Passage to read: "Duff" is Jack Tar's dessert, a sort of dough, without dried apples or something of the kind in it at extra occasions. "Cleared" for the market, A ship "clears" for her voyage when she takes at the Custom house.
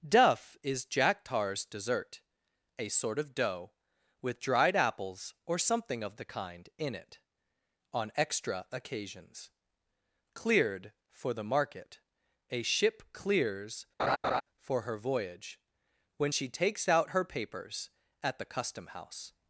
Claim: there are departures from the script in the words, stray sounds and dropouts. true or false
true